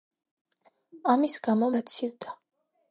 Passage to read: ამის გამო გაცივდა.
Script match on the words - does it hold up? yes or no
yes